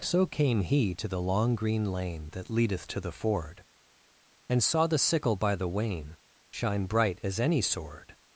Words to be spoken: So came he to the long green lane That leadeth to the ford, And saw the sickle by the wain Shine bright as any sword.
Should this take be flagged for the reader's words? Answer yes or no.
no